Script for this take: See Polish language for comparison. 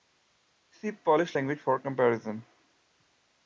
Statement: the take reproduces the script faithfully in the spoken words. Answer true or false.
true